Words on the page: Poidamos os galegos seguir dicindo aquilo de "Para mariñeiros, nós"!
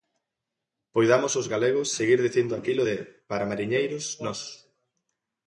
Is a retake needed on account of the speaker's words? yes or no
no